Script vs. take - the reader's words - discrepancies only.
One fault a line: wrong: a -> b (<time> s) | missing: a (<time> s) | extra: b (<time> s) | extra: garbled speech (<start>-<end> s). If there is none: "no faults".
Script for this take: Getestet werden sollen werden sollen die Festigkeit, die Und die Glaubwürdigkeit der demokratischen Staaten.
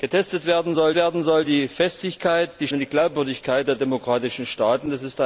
no faults